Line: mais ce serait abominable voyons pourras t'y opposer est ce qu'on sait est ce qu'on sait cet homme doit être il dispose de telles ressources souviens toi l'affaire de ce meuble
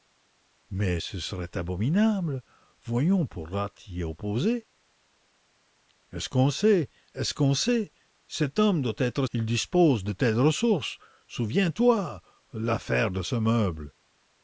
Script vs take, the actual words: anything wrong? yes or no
no